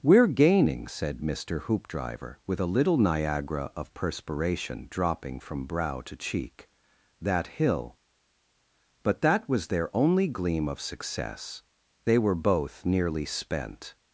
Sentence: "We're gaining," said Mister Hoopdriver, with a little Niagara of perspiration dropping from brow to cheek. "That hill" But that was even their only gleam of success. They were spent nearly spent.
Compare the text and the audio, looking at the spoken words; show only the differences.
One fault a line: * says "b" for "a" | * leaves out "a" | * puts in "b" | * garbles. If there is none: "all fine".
* leaves out "even"
* says "both" for "spent"